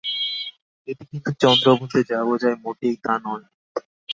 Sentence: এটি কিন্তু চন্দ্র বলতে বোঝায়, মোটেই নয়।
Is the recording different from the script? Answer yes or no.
yes